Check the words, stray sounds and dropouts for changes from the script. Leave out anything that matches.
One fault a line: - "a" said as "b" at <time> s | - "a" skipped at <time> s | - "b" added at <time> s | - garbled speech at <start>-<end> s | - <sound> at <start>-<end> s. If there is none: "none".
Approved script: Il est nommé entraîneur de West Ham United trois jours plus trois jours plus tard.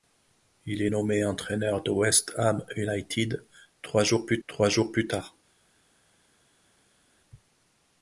none